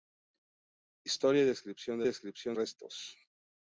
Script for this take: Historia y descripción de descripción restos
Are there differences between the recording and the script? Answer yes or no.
no